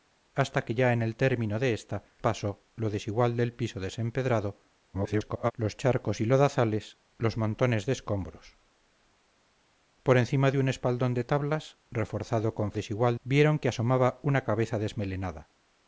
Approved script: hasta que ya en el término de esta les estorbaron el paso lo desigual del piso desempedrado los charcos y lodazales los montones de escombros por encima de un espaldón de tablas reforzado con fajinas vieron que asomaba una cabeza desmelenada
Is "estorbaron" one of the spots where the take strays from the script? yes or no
yes